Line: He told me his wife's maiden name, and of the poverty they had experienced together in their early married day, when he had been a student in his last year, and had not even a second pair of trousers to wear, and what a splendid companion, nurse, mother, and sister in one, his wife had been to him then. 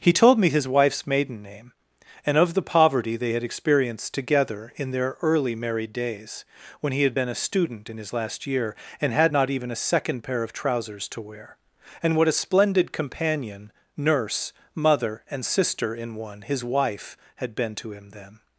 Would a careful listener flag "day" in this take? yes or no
yes